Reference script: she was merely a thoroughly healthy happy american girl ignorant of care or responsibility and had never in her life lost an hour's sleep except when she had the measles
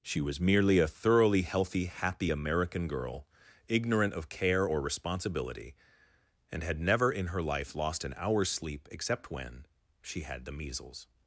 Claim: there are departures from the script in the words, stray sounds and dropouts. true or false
false